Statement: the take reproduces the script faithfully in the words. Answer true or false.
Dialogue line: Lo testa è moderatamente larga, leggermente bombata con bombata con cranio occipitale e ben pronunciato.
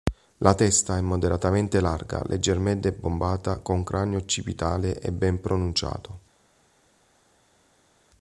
false